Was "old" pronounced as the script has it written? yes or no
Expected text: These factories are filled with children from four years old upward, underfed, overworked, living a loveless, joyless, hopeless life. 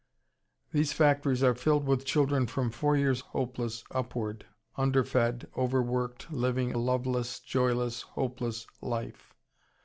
no